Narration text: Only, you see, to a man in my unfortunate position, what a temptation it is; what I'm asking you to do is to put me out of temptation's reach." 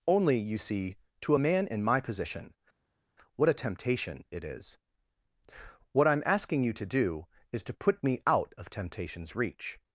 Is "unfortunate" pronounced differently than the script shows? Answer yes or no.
yes